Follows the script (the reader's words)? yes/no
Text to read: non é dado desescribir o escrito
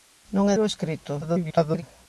no